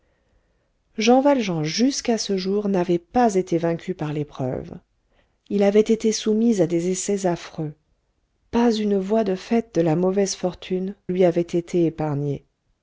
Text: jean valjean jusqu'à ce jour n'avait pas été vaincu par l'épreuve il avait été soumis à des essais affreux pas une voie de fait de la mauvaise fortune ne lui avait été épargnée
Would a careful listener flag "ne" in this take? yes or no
yes